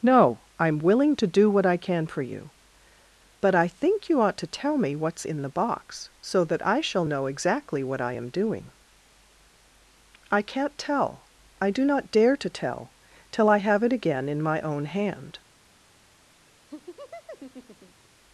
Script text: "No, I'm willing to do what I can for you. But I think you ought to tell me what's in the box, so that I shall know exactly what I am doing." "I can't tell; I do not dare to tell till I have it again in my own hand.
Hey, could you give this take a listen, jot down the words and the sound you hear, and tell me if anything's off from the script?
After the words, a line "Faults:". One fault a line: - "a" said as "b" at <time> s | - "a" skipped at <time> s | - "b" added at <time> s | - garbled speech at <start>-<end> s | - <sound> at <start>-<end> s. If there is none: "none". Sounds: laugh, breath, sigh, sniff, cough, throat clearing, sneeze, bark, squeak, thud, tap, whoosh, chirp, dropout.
"No, I'm willing to do what I can for you. But I think you ought to tell me what's in the box, so that I shall know exactly what I am doing." "I can't tell; I do not dare to tell till I have it again in my own hand.
Faults:
- laugh at 16.7-18.1 s